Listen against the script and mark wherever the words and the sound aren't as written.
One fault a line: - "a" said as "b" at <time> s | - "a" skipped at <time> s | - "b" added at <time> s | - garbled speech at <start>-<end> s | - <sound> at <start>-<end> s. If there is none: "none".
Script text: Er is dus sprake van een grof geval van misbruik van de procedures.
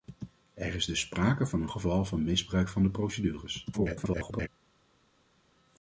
- "grof" skipped at 1.7 s
- garbled speech at 3.7-4.5 s